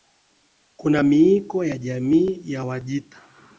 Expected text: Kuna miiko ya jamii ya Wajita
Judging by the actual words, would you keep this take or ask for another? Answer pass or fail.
pass